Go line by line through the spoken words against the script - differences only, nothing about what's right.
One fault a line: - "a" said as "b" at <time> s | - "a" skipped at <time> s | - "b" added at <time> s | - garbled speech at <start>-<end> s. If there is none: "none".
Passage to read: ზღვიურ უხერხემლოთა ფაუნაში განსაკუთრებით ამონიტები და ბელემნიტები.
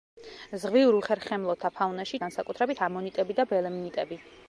none